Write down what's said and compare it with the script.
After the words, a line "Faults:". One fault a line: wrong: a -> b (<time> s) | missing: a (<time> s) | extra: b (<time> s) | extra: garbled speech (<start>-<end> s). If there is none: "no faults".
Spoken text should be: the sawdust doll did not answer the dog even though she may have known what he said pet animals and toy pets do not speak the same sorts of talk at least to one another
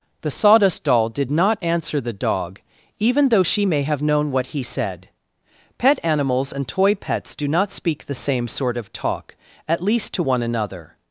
the sawdust doll did not answer the dog even though she may have known what he said pet animals and toy pets do not speak the same sort of talk at least to one another
Faults:
wrong: sorts -> sort (8.5 s)